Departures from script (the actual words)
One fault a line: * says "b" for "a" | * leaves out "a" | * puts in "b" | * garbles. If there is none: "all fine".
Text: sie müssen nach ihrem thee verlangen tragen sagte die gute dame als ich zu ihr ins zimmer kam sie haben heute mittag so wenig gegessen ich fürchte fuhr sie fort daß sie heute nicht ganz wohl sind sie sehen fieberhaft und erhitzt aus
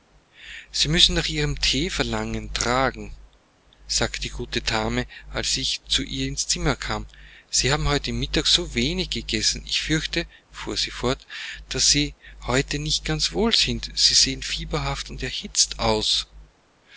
all fine